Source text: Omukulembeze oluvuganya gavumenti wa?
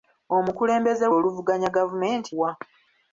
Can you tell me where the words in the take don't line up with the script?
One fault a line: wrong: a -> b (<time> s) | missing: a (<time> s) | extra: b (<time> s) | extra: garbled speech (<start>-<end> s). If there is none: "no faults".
no faults